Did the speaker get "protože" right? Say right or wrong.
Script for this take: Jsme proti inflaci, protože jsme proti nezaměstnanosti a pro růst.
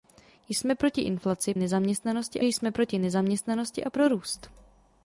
wrong